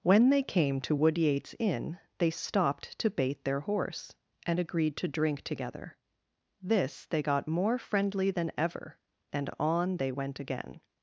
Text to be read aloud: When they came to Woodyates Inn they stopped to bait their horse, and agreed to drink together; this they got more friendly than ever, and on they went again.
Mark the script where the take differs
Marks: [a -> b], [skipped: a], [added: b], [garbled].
When they came to Woodyates Inn they stopped to bait their horse, and agreed to drink together; this they got more friendly than ever, and on they went again.